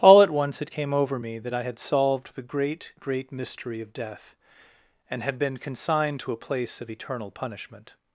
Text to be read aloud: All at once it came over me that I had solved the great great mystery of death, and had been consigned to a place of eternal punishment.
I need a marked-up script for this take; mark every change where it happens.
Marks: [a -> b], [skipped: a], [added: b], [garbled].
All at once it came over me that I had solved the great great mystery of death, and had been consigned to a place of eternal punishment.